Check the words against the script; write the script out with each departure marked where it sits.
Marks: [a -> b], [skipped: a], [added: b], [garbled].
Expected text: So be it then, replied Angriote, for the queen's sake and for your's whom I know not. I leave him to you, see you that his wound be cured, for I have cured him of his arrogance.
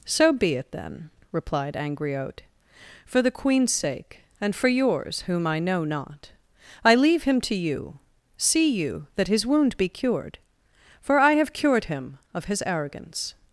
So be it then, replied Angriote, for the queen's sake and for your's whom I know not. I leave him to you, see you that his wound be cured, for I have cured him of his arrogance.